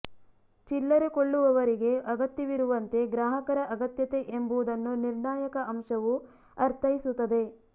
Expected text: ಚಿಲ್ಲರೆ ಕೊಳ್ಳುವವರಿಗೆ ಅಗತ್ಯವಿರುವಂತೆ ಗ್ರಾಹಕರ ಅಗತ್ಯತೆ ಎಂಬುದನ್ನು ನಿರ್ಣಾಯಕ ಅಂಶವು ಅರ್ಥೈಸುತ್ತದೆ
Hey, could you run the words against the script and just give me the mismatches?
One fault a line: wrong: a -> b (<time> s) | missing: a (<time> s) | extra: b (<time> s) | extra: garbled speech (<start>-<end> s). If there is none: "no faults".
no faults